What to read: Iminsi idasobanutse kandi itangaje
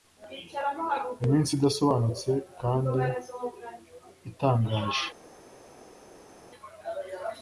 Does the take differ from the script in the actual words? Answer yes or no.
no